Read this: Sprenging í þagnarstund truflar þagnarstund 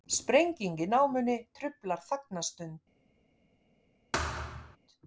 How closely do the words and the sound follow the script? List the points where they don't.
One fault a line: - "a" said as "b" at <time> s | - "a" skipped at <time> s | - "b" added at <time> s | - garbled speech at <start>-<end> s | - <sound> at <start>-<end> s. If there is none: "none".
- "þagnarstund" said as "námunni" at 0.9 s
- thud at 4.1-4.8 s